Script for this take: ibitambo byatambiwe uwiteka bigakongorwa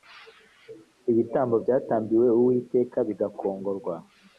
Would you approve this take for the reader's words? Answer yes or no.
yes